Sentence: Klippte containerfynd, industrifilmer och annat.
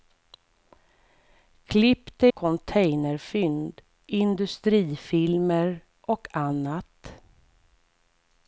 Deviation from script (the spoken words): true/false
false